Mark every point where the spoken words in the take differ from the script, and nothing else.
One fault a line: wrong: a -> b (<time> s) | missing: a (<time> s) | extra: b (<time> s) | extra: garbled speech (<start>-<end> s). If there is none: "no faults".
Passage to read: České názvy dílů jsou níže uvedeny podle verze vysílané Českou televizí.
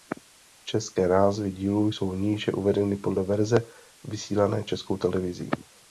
no faults